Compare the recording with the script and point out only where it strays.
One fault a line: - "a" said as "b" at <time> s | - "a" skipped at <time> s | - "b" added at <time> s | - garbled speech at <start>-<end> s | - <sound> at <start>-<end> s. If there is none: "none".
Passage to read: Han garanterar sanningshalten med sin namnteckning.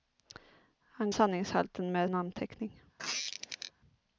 - "garanterar" skipped at 1.1 s
- "sin" skipped at 2.1 s
- squeak at 3.0-3.7 s